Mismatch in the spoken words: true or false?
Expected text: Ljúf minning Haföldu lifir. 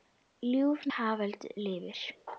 true